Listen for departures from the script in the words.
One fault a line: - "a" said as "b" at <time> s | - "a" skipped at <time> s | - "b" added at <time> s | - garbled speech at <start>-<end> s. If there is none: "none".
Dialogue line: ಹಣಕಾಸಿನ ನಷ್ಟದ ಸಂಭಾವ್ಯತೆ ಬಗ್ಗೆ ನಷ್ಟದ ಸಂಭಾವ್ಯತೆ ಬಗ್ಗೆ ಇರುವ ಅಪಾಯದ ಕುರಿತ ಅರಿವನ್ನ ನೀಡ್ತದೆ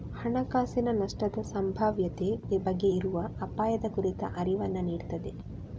- "ನಷ್ಟದ ಸಂಭಾವ್ಯತೆ ಬಗ್ಗೆ" skipped at 2.9 s